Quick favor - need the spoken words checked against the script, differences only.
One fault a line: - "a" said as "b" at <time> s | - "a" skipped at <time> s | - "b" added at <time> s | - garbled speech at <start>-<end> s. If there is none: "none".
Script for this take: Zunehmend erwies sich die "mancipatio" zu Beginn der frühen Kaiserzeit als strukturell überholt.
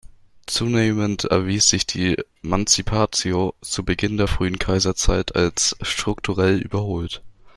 none